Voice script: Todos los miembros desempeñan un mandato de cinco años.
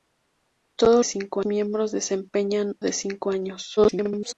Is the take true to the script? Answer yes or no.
no